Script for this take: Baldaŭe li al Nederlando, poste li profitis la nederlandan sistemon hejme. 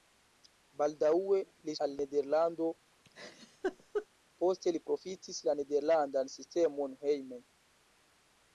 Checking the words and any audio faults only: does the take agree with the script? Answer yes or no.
no